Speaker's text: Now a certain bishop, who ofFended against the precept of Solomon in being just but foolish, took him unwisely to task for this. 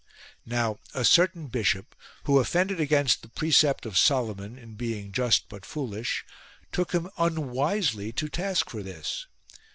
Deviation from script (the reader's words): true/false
false